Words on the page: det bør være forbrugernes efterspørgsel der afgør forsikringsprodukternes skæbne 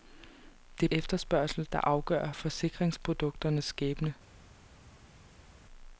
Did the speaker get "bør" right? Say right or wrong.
wrong